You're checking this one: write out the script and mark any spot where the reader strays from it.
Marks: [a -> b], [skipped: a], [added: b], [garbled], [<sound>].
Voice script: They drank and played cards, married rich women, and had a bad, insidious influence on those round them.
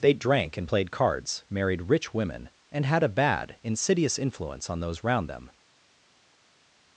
They drank and played cards, married rich women, and had a bad, insidious influence on those round them.